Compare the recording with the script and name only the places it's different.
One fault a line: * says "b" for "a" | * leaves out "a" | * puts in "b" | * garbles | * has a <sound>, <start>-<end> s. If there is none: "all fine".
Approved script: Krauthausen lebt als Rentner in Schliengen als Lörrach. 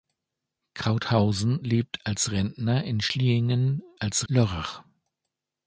all fine